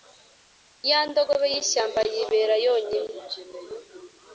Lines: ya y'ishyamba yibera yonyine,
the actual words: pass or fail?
fail